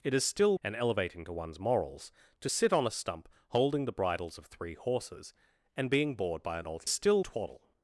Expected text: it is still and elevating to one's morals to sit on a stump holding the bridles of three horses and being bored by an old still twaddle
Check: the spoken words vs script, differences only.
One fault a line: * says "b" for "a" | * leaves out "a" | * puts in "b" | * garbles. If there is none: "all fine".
all fine